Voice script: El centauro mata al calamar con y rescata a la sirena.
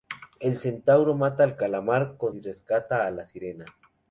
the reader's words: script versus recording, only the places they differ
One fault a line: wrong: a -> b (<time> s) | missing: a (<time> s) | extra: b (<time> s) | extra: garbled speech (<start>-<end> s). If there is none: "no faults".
no faults